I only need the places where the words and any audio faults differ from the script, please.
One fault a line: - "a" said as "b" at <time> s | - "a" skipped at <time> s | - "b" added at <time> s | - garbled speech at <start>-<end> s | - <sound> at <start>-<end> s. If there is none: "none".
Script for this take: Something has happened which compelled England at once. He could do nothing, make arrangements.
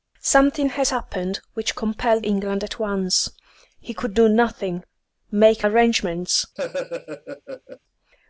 - laugh at 6.6-7.8 s